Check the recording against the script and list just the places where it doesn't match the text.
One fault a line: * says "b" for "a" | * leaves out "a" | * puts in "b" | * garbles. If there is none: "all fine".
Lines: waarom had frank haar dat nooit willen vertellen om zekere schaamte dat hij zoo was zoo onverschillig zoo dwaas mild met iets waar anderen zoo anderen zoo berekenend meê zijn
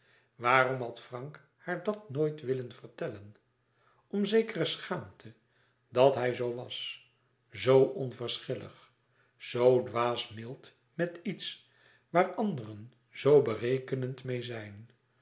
* leaves out "anderen zoo"